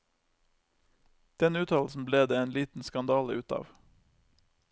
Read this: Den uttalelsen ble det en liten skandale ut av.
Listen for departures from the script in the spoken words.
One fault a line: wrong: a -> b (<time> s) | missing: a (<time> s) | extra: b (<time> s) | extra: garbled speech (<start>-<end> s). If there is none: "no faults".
no faults